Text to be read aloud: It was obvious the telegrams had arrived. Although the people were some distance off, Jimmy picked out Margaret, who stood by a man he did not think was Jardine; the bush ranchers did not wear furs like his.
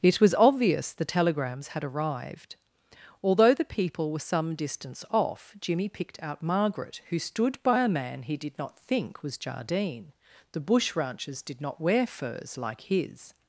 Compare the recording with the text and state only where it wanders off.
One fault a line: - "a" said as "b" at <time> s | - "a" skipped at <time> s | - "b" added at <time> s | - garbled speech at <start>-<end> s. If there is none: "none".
none